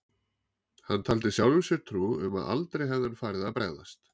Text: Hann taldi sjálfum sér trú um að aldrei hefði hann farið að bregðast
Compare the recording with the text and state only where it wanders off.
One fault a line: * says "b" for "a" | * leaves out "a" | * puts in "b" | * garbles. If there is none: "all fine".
all fine